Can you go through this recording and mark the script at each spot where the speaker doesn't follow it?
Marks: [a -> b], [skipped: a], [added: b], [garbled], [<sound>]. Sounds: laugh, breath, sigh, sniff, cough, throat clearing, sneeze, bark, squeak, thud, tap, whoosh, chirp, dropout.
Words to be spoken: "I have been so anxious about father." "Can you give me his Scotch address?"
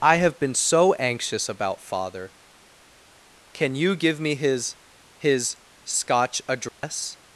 "I have been so anxious about father." "Can you give me his [added: his] Scotch address?" [dropout]